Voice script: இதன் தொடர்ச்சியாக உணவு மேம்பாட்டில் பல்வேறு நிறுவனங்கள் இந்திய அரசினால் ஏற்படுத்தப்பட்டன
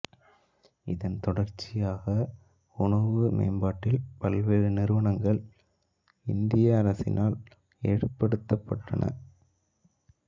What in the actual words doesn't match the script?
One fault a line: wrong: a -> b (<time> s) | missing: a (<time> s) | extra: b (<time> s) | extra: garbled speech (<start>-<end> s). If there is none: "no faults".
no faults